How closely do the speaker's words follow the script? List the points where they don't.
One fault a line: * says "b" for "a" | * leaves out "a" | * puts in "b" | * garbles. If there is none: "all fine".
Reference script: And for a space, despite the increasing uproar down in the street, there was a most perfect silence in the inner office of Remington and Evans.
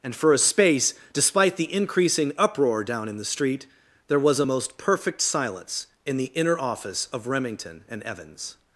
all fine